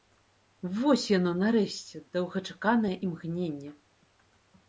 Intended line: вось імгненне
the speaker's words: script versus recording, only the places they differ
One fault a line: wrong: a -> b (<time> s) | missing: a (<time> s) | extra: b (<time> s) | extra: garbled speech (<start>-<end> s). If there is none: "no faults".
extra: яно нарэшце доўгачаканае (1.2 s)